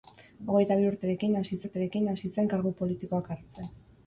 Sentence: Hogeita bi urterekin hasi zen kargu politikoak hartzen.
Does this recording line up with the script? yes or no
no